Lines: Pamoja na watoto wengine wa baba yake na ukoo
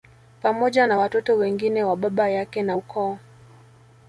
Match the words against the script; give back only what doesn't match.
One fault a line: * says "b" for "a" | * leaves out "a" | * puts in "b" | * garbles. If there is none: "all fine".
all fine